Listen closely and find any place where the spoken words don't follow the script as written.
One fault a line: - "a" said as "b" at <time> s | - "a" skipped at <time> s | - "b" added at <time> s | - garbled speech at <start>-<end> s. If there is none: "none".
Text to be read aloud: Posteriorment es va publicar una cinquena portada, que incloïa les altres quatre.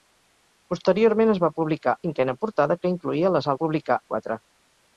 - "una" skipped at 1.9 s
- "altres" said as "publicar" at 3.6 s